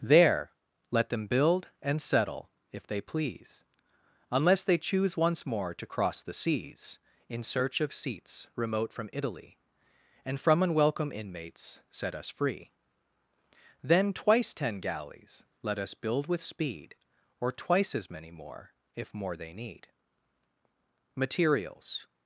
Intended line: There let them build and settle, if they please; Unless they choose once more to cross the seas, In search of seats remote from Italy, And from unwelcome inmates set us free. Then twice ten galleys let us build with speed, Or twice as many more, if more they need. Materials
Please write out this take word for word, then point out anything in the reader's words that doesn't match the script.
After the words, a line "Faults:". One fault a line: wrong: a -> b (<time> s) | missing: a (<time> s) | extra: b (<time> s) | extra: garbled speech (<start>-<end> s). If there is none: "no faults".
There let them build and settle, if they please; Unless they choose once more to cross the seas, In search of seats remote from Italy, And from unwelcome inmates set us free. Then twice ten galleys let us build with speed, Or twice as many more, if more they need. Materials
Faults:
no faults